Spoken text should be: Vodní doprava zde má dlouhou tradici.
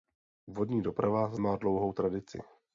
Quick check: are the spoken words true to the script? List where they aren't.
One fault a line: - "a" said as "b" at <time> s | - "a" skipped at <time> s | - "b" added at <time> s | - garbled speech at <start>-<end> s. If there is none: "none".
- "zde" skipped at 1.4 s